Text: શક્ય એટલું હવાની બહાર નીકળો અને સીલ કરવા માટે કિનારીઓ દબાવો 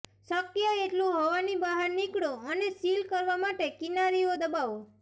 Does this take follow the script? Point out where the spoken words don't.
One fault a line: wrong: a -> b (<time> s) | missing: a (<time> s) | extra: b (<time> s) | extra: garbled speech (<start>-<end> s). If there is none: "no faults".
no faults